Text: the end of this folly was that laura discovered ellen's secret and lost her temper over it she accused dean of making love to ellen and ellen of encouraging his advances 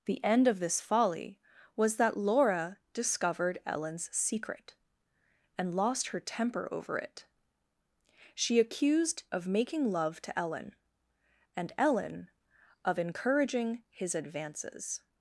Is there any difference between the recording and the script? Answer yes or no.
yes